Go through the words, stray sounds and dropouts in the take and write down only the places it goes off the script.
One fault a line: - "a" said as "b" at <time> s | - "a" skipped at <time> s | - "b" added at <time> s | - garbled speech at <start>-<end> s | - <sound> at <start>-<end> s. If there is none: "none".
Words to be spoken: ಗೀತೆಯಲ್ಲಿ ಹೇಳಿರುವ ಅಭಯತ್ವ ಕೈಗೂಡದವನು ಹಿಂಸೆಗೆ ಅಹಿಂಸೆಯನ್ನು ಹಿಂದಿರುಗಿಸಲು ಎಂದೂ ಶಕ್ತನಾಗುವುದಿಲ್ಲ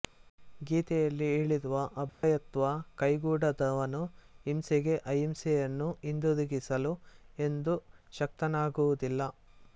- dropout at 2.1-2.2 s